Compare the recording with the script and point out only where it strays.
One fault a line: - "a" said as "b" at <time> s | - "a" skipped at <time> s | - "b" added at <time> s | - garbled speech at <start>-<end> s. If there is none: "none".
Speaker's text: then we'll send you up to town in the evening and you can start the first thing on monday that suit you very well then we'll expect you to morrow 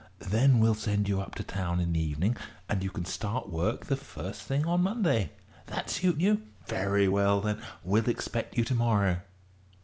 - "work" added at 3.5 s